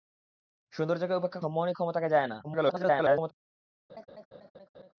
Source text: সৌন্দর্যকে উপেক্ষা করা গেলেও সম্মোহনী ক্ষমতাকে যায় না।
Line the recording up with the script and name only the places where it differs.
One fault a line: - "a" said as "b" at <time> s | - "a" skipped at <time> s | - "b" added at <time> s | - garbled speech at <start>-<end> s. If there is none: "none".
- "করা গেলেও" skipped at 1.4 s
- garbled speech at 2.4-3.3 s